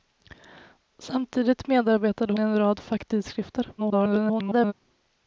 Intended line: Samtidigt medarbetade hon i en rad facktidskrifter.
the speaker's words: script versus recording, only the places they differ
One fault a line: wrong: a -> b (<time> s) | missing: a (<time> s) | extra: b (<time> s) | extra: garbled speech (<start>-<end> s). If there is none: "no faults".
missing: hon (2.3 s)
extra: garbled speech (3.8-4.7 s)